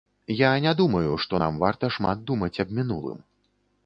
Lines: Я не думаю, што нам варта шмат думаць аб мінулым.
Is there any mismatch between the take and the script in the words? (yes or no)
no